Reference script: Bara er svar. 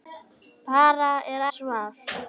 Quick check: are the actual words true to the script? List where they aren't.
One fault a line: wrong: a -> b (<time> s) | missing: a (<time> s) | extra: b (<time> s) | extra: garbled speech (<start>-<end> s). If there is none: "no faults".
no faults